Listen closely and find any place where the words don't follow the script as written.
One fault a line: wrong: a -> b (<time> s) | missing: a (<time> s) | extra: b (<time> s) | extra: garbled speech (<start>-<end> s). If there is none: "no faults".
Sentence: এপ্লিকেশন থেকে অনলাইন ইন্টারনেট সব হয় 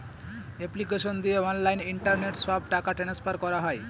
wrong: থেকে -> দিয়ে (1.2 s)
extra: টাকা ট্রান্সফার করা (2.7 s)